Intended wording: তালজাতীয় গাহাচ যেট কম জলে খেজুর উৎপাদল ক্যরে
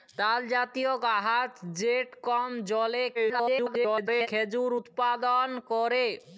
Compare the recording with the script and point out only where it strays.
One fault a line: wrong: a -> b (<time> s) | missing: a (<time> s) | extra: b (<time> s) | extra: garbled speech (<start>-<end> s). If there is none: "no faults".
extra: garbled speech (3.1-4.3 s)